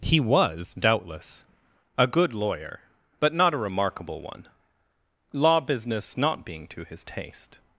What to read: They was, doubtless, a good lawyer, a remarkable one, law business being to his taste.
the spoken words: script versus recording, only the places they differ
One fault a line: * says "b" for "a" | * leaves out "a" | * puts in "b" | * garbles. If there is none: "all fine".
* says "He" for "They"
* puts in "but not"
* puts in "not"